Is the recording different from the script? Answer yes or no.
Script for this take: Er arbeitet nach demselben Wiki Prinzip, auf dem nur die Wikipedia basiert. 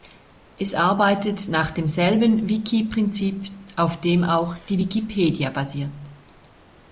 yes